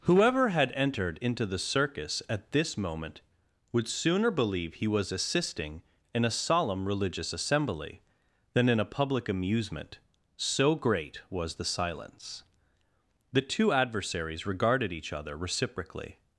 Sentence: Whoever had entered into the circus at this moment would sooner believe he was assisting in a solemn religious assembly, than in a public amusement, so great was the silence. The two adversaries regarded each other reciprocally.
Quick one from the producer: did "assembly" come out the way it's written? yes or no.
yes